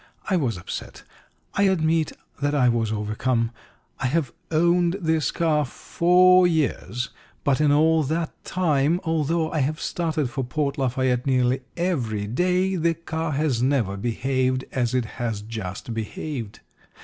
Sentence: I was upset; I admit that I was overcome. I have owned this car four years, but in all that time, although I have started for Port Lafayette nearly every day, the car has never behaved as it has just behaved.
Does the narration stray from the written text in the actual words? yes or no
no